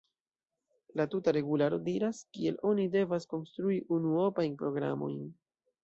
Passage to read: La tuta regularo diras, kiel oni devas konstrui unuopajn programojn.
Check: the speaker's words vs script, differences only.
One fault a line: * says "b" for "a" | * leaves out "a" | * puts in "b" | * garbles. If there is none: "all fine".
all fine